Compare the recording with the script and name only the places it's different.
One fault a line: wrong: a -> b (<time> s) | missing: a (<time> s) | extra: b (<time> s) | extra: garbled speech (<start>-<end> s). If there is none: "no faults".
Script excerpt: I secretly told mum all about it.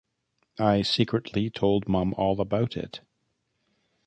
no faults